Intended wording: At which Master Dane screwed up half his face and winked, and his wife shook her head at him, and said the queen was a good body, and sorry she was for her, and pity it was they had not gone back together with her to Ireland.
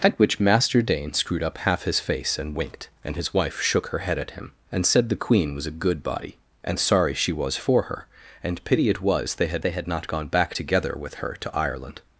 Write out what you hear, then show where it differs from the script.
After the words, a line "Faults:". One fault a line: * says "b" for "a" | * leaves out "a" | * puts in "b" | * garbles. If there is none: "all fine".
At which Master Dane screwed up half his face and winked, and his wife shook her head at him, and said the queen was a good body, and sorry she was for her, and pity it was they had they had not gone back together with her to Ireland.
Faults:
* puts in "they had"